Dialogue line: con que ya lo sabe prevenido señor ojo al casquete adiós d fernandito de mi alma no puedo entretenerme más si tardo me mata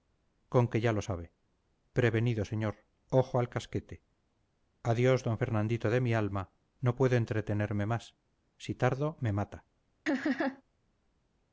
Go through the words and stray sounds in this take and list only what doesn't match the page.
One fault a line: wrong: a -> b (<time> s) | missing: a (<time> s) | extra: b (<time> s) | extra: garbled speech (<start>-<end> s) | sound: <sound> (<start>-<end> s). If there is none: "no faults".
sound: laugh (10.1-10.6 s)